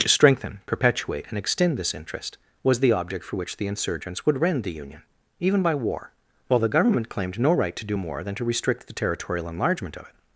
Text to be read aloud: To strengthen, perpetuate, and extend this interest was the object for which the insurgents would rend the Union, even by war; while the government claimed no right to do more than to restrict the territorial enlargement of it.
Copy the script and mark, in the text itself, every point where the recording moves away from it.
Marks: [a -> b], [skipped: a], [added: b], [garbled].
To strengthen, perpetuate, and extend this interest was the object for which the insurgents would rend the Union, even by war; while the government claimed no right to do more than to restrict the territorial enlargement of it.